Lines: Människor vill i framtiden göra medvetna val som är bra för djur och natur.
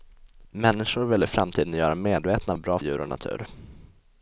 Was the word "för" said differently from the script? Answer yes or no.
yes